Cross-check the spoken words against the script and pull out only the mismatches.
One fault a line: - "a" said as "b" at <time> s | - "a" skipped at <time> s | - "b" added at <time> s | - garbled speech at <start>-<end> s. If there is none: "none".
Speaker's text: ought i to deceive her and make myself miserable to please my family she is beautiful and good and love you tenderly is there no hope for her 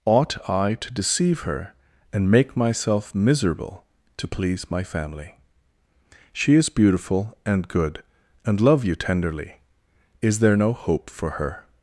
none